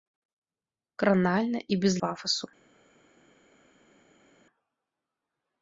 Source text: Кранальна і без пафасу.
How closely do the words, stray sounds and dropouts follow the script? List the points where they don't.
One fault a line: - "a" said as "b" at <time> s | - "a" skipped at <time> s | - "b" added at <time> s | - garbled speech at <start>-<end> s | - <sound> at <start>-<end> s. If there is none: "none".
none